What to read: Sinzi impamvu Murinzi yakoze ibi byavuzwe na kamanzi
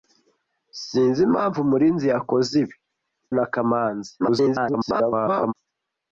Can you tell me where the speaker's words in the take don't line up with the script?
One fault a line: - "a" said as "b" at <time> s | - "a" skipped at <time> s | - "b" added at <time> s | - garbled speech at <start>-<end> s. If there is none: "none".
- "byavuzwe" skipped at 2.8 s
- garbled speech at 4.2-5.5 s